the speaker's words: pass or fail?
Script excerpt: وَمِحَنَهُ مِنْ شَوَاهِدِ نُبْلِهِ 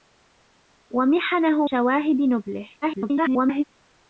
fail